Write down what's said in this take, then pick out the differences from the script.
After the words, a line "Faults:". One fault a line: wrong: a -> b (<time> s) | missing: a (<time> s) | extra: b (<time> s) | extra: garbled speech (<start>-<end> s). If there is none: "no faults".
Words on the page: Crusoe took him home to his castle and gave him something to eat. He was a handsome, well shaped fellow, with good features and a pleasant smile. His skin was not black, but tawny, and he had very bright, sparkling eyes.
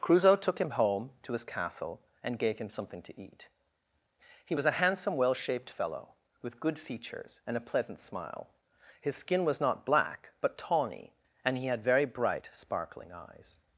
Crusoe took him home to his castle and gave him something to eat. He was a handsome, well shaped fellow, with good features and a pleasant smile. His skin was not black, but tawny, and he had very bright, sparkling eyes.
Faults:
no faults